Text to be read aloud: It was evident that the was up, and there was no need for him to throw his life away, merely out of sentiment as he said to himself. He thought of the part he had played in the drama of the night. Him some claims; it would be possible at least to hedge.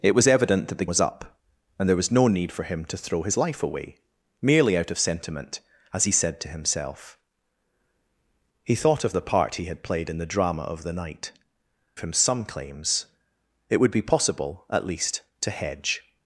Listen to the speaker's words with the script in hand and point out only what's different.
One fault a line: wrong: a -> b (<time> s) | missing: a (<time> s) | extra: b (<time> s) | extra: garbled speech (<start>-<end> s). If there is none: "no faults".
no faults